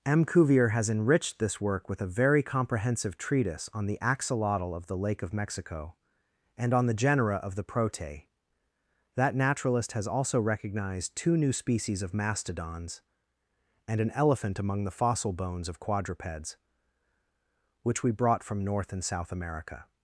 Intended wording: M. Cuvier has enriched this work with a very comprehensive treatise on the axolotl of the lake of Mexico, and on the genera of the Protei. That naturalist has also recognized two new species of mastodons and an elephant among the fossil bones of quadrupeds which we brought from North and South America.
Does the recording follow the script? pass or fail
pass